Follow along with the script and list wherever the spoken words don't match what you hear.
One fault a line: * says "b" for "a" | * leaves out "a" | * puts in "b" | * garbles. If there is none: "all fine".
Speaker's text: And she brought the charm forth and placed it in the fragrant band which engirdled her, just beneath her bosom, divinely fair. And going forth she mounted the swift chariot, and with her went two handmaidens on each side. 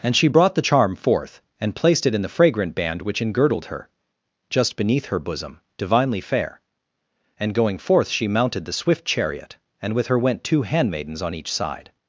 all fine